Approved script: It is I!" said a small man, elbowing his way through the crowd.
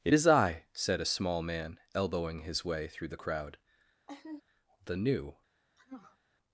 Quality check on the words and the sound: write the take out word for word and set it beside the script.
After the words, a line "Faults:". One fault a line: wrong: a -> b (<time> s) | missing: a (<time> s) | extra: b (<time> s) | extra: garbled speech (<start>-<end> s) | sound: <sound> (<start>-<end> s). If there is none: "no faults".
It is I!" said a small man, elbowing his way through the crowd. The new
Faults:
sound: laugh (4.1-4.4 s)
extra: The new (4.9 s)
sound: sneeze (5.8-6.2 s)